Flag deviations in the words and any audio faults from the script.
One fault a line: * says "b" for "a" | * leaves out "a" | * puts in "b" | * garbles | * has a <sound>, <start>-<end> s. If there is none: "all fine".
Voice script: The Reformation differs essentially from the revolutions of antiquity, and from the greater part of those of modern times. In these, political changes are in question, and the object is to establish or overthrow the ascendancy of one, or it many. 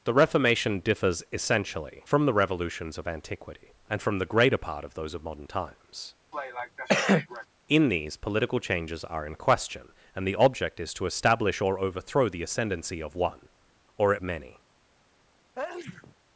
* has a cough, 6.3-7.5 s
* has a sneeze, 15.5-16.1 s